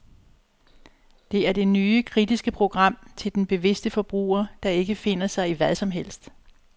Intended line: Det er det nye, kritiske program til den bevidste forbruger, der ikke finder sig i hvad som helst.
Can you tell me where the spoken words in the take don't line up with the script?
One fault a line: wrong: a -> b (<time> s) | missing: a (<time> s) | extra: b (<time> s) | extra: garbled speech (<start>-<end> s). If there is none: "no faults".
no faults